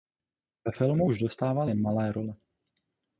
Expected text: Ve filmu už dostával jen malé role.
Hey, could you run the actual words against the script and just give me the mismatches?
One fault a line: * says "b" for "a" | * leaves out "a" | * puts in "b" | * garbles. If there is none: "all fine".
all fine